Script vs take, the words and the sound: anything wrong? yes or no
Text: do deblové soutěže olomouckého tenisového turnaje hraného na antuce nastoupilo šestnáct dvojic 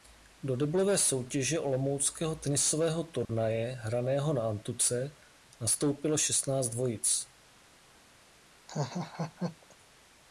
yes